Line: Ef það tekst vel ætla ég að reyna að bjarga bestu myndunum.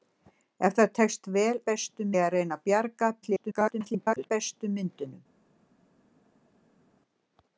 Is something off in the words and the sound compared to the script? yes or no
yes